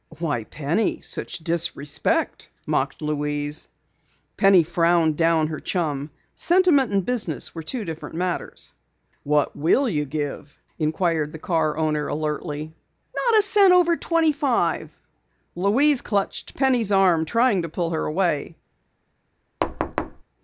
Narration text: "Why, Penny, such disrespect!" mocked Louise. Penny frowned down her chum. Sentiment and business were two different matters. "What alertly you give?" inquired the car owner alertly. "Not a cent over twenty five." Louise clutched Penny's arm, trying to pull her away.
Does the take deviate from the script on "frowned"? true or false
false